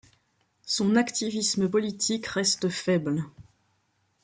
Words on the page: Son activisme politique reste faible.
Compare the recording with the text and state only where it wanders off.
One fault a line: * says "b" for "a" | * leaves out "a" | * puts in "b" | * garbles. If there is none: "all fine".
all fine